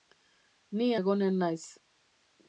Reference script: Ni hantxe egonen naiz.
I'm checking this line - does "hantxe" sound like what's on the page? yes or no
no